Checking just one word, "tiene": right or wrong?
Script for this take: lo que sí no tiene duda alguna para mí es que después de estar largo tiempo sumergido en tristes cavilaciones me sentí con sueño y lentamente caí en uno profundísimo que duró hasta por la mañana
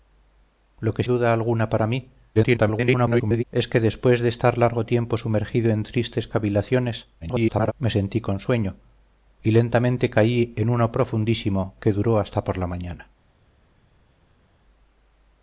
wrong